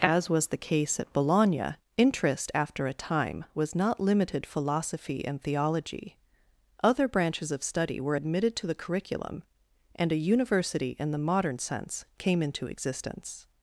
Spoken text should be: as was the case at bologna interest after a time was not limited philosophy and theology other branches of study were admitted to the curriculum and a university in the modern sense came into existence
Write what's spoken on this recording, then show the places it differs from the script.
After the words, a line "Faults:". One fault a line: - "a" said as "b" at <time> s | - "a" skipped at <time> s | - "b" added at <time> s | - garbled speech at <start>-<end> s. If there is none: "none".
as was the case at bologna interest after a time was not limited philosophy and theology other branches of study were admitted to the curriculum and a university in the modern sense came into existence
Faults:
none